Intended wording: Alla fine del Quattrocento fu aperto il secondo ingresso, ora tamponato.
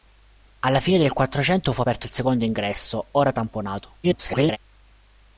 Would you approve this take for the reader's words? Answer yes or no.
no